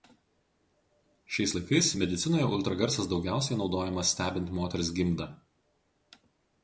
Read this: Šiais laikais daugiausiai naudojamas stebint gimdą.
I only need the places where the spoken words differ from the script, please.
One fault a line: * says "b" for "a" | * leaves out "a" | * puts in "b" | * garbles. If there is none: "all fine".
* puts in "medicinoje ultragarsas"
* puts in "moters"